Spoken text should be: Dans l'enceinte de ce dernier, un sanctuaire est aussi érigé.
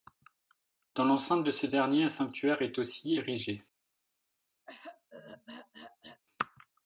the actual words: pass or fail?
pass